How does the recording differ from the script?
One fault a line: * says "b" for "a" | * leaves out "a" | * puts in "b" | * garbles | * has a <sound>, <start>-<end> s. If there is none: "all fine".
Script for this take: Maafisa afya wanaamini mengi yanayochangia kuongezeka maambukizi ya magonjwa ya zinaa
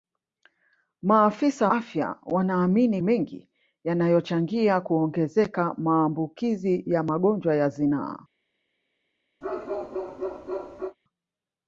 * has a bark, 9.4-11.0 s